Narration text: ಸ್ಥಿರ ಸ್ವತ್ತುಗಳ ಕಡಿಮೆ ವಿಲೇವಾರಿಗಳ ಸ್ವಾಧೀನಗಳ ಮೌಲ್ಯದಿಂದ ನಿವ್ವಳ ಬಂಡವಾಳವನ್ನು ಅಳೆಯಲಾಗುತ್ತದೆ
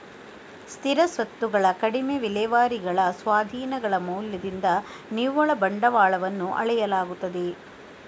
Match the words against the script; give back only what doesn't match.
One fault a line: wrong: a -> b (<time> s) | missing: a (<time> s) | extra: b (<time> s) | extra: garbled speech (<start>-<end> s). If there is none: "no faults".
no faults